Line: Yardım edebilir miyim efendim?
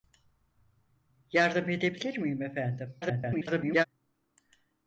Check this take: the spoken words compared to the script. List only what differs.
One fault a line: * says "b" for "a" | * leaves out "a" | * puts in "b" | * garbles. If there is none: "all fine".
* garbles